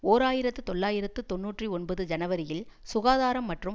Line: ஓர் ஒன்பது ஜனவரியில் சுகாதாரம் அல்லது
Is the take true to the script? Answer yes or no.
no